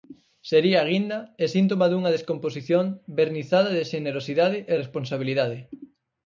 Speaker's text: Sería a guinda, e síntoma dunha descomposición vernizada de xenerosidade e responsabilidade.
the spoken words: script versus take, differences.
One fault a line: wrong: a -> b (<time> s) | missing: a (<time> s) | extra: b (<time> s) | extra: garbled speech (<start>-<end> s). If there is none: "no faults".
no faults